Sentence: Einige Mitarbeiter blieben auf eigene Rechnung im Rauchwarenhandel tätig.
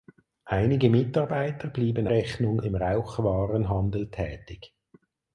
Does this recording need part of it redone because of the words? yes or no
yes